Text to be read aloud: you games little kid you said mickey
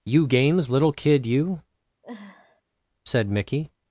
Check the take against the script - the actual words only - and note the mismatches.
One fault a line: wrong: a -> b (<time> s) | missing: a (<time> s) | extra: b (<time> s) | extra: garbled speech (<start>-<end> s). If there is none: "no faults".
no faults